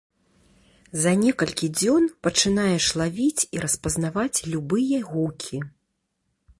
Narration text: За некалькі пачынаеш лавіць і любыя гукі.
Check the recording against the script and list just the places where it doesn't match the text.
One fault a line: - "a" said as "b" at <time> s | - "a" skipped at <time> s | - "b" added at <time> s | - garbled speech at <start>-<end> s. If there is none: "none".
- "дзён" added at 1.8 s
- "распазнаваць" added at 3.7 s